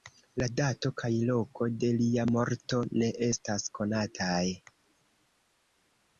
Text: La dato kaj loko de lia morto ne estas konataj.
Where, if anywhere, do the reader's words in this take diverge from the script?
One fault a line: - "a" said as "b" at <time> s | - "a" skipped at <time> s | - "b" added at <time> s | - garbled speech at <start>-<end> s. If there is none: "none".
none